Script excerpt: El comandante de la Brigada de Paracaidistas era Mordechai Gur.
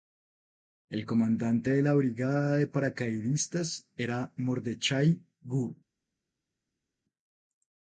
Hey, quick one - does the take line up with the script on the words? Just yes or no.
yes